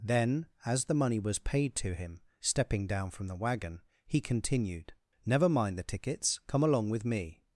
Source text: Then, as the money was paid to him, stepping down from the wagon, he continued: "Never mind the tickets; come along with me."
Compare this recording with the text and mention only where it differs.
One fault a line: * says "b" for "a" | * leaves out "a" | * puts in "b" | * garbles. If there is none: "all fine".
all fine